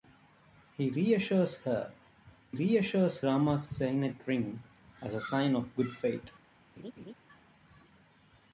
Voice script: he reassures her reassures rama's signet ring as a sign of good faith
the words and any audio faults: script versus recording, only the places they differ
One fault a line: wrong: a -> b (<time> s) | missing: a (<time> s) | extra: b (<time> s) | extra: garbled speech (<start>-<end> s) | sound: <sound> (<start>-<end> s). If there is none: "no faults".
sound: laugh (6.8-7.1 s)